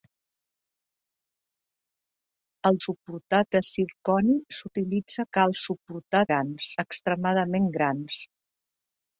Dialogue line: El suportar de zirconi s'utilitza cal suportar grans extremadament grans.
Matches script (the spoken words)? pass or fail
pass